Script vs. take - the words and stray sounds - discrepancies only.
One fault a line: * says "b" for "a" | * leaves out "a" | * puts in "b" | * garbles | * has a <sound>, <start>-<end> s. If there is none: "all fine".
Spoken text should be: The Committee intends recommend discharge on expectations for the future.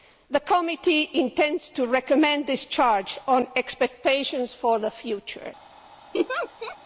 * puts in "to"
* has a laugh, 6.1-6.8 s